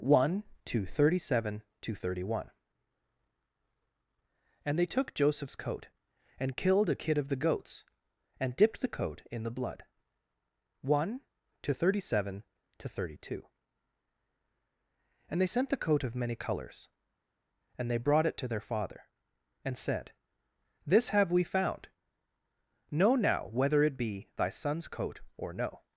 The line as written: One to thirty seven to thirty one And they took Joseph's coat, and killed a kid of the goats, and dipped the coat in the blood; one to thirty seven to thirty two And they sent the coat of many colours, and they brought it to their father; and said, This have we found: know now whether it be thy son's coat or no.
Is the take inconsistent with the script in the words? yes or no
no